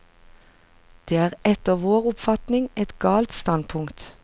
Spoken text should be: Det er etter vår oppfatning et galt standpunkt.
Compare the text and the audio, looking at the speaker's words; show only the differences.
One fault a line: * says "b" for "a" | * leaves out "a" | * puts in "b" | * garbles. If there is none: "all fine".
all fine